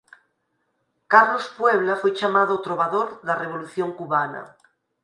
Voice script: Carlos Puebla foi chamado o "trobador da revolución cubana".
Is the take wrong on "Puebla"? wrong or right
right